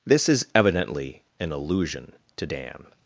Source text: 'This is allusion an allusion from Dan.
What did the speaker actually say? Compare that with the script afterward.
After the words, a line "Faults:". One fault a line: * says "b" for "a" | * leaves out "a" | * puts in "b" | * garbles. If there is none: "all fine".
'This is evidently an allusion to Dan.
Faults:
* says "evidently" for "allusion"
* says "to" for "from"